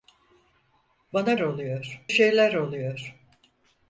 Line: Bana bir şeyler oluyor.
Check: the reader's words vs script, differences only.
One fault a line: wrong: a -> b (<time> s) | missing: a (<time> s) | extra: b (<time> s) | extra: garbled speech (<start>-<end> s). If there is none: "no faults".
wrong: bir -> oluyor (1.4 s)